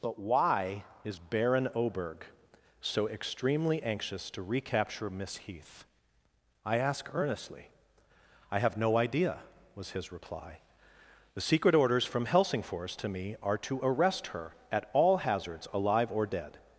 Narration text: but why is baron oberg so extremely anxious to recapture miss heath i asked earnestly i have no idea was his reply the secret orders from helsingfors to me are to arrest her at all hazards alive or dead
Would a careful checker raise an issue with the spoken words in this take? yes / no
yes